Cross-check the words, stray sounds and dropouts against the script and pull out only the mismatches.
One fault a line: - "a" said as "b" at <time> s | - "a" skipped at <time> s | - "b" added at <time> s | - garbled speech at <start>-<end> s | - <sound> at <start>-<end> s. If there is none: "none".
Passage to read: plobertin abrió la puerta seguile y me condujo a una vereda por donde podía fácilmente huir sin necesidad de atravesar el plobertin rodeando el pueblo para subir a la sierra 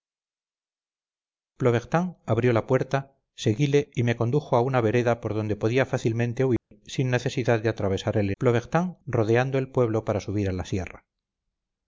- dropout at 6.6-6.7 s